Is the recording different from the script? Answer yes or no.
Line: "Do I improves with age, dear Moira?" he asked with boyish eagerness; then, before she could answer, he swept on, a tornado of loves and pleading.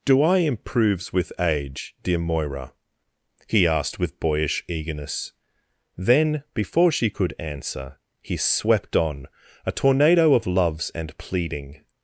no